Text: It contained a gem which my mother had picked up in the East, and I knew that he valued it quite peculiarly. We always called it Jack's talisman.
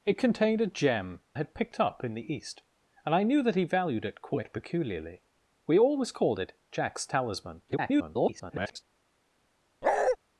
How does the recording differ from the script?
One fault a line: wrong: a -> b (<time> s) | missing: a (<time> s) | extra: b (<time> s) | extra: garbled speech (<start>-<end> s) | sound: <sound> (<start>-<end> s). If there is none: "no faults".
missing: which my mother (1.2 s)
extra: garbled speech (7.7-8.8 s)
sound: bark (9.8-10.2 s)